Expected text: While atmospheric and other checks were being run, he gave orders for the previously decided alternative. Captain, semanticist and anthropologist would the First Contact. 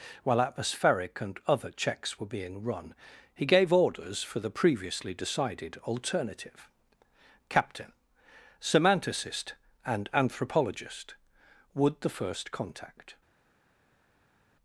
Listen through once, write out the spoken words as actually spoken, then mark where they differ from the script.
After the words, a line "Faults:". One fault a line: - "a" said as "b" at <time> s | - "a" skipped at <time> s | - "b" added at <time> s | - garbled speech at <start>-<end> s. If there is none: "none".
While atmospheric and other checks were being run, he gave orders for the previously decided alternative. Captain, semanticist and anthropologist would the First Contact.
Faults:
none